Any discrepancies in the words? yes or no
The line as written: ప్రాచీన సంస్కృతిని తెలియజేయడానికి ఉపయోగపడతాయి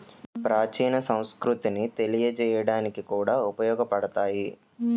yes